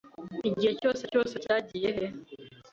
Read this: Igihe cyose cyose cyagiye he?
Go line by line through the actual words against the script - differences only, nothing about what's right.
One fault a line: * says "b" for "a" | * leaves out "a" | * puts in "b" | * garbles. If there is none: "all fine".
all fine